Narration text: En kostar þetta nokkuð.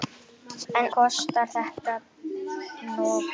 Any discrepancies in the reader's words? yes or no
no